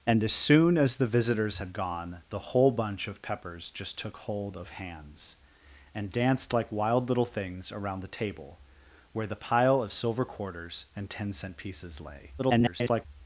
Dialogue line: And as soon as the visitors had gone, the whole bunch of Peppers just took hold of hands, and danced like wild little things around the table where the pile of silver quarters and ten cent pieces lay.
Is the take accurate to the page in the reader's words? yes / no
no